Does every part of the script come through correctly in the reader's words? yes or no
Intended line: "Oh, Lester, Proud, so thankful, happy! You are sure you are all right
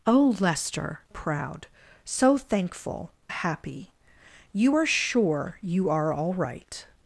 yes